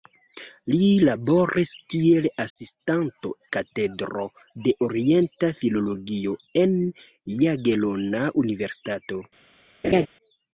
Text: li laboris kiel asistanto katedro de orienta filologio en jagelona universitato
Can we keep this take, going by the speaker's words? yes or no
yes